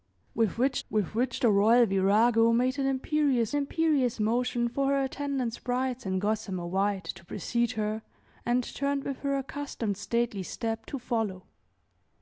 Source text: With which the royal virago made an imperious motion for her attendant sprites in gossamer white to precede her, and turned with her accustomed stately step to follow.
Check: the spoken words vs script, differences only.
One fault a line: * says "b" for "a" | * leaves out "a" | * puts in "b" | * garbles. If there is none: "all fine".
* puts in "with which"
* puts in "imperious"